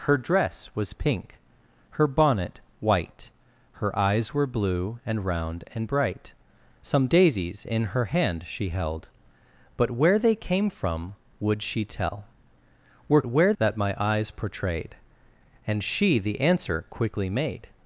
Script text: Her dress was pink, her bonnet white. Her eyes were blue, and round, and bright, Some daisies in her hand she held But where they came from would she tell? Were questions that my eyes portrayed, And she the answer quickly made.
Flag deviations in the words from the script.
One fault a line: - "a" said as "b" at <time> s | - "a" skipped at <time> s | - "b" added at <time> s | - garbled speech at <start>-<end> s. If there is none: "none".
- "questions" said as "where" at 13.3 s